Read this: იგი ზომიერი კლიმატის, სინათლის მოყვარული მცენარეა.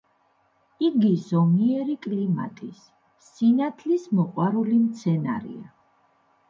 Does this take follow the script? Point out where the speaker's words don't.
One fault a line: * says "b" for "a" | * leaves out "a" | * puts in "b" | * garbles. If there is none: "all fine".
all fine